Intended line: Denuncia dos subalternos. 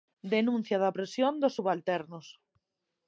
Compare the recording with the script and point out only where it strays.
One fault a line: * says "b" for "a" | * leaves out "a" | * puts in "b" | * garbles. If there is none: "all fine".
* puts in "da opresión"